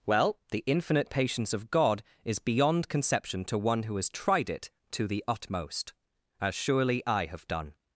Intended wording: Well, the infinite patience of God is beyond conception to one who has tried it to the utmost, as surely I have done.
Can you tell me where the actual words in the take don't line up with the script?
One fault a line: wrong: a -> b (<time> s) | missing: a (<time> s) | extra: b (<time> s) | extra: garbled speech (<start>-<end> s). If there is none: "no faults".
no faults